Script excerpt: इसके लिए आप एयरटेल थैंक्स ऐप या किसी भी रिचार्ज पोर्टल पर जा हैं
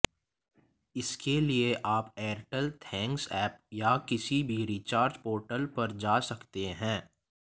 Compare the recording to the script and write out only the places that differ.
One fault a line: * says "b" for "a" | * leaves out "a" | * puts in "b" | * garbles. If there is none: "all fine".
* puts in "सकते"